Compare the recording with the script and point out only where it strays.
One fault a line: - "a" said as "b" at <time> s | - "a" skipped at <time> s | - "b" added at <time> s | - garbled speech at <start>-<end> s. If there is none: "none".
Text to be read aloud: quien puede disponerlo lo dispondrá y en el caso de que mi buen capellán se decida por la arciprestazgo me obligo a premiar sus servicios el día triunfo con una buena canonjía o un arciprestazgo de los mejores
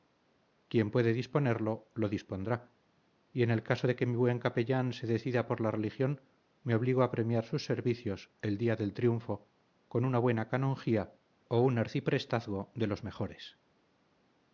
- "arciprestazgo" said as "religión" at 5.7 s
- "del" added at 8.8 s